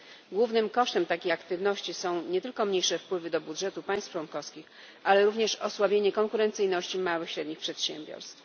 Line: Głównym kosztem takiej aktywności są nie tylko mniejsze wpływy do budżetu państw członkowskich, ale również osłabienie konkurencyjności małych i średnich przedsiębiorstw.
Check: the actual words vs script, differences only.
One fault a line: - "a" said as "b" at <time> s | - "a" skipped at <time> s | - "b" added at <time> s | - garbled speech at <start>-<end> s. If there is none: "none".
none